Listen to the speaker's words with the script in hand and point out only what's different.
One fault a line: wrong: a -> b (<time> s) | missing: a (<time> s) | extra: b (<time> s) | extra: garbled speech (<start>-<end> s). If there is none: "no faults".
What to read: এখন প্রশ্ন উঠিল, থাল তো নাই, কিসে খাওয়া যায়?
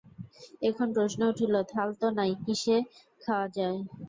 no faults